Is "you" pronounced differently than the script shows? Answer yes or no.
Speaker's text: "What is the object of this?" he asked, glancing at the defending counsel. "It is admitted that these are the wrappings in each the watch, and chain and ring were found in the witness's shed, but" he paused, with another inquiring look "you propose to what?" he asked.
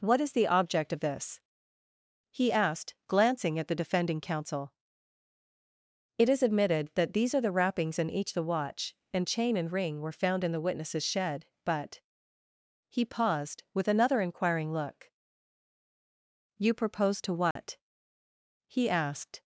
no